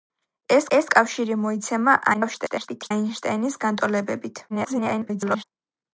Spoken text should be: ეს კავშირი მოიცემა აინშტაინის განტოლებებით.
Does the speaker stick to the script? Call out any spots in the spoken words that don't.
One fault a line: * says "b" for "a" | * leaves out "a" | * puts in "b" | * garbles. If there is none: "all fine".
* puts in "ეს"
* garbles
* garbles